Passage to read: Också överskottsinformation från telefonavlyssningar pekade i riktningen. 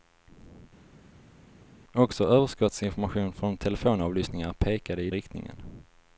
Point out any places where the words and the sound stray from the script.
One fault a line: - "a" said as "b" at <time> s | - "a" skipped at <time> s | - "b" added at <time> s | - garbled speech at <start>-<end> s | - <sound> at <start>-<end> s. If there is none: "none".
none